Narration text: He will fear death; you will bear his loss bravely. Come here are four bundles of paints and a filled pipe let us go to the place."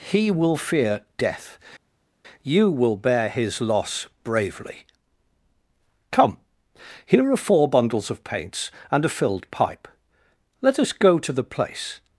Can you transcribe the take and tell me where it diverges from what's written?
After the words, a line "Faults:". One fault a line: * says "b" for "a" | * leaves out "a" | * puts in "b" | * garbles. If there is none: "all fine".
He will fear death; you will bear his loss bravely. Come here are four bundles of paints and a filled pipe let us go to the place."
Faults:
all fine